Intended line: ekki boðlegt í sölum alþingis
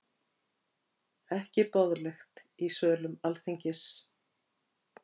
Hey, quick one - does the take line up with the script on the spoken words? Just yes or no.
yes